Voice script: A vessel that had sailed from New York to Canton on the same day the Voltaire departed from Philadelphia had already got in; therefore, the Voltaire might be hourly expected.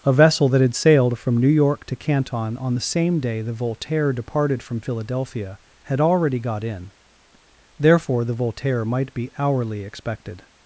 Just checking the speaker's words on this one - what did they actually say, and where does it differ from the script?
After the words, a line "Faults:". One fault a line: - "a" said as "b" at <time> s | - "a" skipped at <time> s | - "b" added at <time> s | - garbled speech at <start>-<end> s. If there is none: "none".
A vessel that had sailed from New York to Canton on the same day the Voltaire departed from Philadelphia had already got in; therefore, the Voltaire might be hourly expected.
Faults:
none